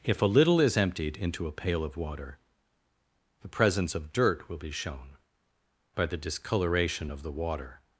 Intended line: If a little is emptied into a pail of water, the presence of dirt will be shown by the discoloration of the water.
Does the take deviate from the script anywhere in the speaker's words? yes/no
no